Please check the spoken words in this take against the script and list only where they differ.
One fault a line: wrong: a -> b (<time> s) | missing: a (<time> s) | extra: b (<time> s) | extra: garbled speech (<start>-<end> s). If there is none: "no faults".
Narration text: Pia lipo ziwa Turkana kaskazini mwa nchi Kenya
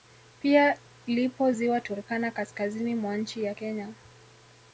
extra: ya (3.4 s)